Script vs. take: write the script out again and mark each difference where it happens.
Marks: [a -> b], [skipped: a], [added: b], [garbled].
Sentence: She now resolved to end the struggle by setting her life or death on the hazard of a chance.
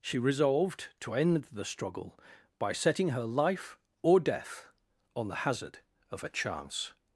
She [skipped: now] resolved to end the struggle by setting her life or death on the hazard of a chance.